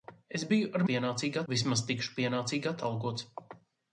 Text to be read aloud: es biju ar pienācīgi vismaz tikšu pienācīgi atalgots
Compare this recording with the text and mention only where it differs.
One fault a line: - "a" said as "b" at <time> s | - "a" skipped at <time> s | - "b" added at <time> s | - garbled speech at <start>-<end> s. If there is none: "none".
none